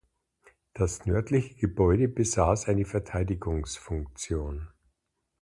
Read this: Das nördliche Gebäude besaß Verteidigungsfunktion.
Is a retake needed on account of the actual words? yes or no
yes